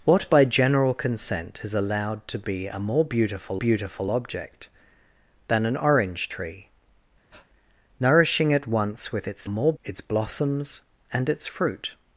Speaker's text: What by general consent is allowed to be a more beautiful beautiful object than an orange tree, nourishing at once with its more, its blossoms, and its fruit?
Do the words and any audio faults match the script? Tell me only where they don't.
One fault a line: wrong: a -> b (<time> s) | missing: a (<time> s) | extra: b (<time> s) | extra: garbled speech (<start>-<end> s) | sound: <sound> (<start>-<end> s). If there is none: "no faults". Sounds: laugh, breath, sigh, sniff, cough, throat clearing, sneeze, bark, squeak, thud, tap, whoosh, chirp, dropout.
sound: breath (7.3-7.5 s)